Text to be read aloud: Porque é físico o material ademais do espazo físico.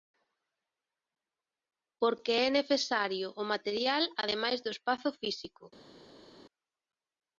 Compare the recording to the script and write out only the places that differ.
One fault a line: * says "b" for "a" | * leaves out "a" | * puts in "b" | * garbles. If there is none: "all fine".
* says "necesario" for "físico"